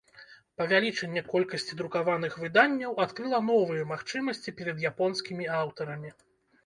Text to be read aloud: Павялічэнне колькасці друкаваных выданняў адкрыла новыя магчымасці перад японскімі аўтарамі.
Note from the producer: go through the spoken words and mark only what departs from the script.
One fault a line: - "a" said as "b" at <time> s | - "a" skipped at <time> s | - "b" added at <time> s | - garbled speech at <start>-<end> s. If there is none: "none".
none